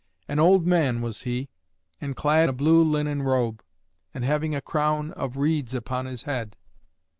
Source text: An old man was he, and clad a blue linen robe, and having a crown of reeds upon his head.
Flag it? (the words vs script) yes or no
no